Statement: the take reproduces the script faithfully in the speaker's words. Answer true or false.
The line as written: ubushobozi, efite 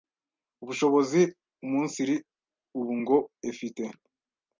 false